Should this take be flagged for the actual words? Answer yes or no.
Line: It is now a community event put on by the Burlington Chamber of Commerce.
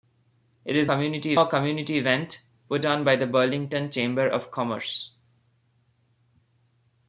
yes